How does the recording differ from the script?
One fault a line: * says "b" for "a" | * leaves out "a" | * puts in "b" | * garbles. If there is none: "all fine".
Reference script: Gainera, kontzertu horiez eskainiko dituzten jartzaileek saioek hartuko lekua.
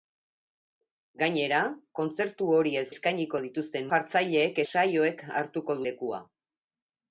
all fine